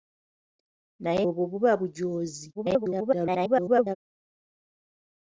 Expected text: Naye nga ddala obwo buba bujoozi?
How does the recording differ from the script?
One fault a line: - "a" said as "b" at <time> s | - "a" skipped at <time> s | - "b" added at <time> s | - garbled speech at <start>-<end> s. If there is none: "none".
- "nga ddala" skipped at 1.2 s
- garbled speech at 2.5-4.0 s